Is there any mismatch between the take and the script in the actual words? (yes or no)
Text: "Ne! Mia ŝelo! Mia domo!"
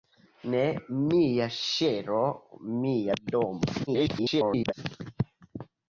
yes